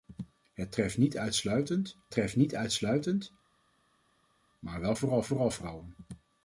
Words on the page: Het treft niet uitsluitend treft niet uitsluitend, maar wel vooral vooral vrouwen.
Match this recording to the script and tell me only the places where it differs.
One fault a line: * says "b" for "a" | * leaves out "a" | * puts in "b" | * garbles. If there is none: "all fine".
all fine